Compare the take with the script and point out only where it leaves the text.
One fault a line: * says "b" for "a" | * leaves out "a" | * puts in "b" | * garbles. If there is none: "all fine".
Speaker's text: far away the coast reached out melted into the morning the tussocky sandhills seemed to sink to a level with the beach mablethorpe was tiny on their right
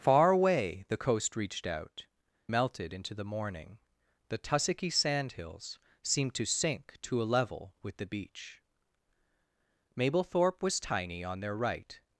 all fine